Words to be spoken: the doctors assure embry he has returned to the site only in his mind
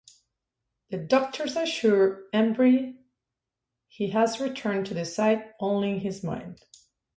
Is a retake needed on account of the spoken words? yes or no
no